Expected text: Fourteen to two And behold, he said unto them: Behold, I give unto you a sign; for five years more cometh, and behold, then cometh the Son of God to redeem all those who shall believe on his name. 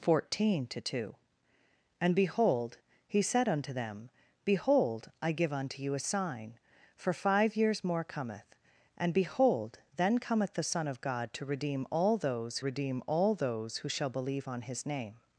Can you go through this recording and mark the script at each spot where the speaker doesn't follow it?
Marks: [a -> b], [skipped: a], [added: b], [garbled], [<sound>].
Fourteen to two And behold, he said unto them: Behold, I give unto you a sign; for five years more cometh, and behold, then cometh the Son of God to redeem all those [added: redeem all those] who shall believe on his name.